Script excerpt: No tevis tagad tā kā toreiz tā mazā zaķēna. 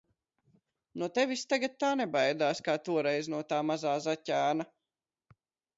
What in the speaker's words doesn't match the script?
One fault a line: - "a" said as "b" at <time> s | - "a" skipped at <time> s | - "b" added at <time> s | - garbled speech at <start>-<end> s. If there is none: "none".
- "nebaidās" added at 2.0 s
- "no" added at 3.4 s